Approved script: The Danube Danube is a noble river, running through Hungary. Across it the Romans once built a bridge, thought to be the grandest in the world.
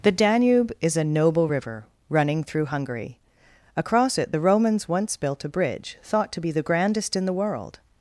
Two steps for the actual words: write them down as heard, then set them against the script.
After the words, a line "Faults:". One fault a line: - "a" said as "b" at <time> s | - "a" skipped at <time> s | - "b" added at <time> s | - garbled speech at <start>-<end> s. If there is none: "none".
The Danube is a noble river, running through Hungary. Across it the Romans once built a bridge, thought to be the grandest in the world.
Faults:
- "Danube" skipped at 0.7 s